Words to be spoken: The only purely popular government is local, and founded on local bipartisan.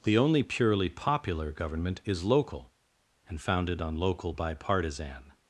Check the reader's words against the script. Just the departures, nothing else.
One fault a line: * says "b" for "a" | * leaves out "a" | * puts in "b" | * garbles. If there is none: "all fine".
all fine